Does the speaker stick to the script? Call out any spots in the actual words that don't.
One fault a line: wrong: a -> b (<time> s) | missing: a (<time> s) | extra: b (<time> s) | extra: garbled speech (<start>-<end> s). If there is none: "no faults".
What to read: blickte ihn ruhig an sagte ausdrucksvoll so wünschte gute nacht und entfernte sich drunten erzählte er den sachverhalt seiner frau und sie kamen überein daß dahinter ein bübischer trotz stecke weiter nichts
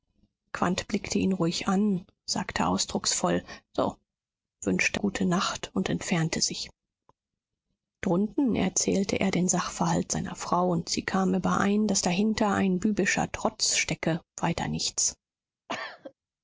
no faults